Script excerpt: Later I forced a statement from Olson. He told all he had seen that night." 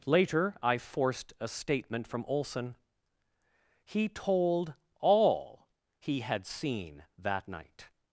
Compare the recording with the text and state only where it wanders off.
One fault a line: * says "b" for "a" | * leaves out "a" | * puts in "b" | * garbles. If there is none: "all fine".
all fine